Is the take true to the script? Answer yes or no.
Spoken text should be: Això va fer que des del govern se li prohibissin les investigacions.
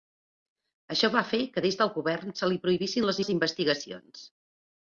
no